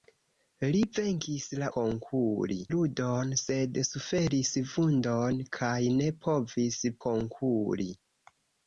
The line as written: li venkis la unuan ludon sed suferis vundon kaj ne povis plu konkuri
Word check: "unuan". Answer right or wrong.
wrong